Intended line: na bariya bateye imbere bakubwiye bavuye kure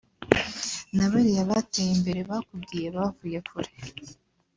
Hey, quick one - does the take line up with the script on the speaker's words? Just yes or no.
yes